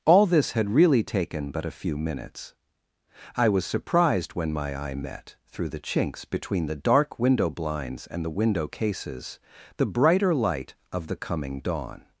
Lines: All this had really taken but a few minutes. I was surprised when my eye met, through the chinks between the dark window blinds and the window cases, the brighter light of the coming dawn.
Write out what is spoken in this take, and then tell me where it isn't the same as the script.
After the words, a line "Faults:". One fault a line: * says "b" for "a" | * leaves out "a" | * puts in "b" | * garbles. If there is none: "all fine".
All this had really taken but a few minutes. I was surprised when my eye met, through the chinks between the dark window blinds and the window cases, the brighter light of the coming dawn.
Faults:
all fine